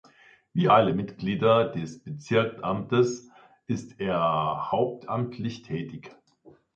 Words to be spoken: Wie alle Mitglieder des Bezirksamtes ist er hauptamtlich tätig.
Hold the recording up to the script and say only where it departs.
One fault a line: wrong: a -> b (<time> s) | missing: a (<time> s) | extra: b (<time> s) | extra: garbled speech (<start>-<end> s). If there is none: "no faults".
no faults